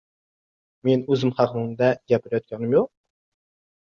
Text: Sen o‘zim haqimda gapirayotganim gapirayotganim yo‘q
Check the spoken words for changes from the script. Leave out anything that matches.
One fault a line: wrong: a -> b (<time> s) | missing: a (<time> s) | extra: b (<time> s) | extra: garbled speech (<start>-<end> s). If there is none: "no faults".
wrong: Sen -> Men (0.9 s)
missing: gapirayotganim (2.7 s)